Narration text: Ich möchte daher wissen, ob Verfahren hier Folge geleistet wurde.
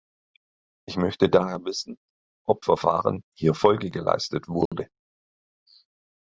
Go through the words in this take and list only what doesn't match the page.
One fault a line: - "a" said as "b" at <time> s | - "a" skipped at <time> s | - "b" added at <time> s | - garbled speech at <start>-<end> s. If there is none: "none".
none